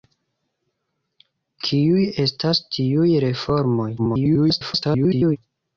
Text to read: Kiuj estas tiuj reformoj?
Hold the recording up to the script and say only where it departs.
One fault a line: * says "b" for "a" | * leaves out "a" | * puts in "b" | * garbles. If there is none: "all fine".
* garbles